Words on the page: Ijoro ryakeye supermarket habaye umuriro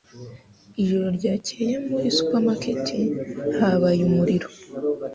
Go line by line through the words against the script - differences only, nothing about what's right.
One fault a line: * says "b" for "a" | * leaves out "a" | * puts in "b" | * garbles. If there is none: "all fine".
* puts in "muri"